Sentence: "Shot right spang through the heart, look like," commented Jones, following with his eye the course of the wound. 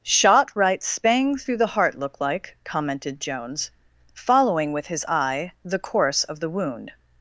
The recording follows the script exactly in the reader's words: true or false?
true